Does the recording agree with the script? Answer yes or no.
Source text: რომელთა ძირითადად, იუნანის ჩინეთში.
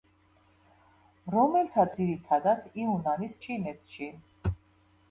yes